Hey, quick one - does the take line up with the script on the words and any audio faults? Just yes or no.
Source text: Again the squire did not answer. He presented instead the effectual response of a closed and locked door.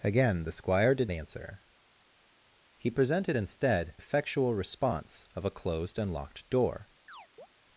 no